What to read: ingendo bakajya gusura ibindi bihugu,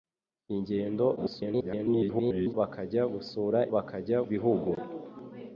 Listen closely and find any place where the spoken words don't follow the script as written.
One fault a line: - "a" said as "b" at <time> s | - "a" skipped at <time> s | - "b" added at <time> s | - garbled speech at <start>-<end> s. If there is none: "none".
- garbled speech at 1.2-2.5 s
- "ibindi" said as "bakajya" at 3.7 s